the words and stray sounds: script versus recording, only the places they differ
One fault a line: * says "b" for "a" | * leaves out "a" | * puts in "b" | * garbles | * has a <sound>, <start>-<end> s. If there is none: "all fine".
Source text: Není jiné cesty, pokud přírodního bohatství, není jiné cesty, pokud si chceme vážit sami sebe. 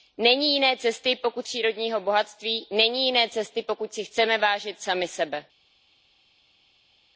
all fine